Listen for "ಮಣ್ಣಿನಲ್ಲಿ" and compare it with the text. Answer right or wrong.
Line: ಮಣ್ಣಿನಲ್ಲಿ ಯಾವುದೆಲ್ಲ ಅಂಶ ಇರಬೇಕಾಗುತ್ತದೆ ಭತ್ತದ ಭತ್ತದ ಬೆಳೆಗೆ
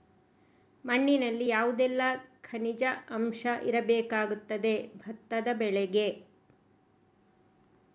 right